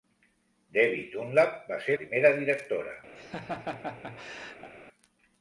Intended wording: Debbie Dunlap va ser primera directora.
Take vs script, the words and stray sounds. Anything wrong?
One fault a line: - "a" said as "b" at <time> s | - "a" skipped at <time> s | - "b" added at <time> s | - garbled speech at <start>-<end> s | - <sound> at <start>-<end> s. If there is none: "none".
- laugh at 3.2-4.7 s